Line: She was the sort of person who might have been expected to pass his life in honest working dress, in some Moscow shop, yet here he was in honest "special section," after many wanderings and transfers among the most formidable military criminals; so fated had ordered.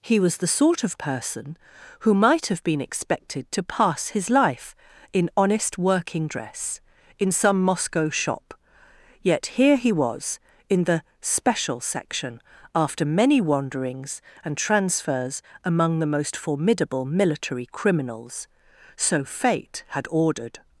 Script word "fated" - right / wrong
wrong